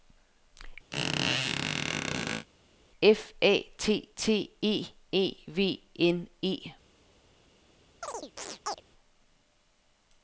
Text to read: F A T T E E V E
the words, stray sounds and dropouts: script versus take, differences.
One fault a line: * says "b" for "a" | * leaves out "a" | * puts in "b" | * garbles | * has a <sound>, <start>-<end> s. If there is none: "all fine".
* has a squeak, 0.9-2.5 s
* puts in "N"
* has a chirp, 8.0-8.8 s